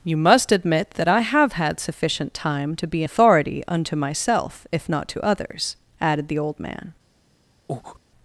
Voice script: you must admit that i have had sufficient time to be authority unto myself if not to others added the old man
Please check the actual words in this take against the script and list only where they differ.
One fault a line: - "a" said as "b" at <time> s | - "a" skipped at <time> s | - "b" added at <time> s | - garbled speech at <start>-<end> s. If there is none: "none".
none